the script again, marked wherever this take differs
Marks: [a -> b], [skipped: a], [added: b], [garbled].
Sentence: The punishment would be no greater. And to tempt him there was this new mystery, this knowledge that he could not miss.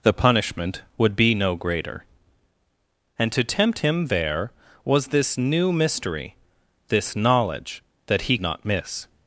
The punishment would be no greater. And to tempt him there was this new mystery, this knowledge that he [skipped: could] not miss.